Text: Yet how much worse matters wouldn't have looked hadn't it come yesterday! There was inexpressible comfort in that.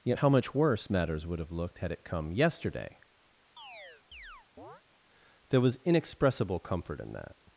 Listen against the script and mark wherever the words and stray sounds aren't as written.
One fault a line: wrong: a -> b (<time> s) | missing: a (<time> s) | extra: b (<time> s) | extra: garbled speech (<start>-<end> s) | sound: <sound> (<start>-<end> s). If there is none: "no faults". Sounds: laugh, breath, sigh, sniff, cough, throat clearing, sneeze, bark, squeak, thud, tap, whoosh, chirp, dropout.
wrong: wouldn't -> would (1.2 s)
wrong: hadn't -> had (1.8 s)
sound: chirp (3.6-4.8 s)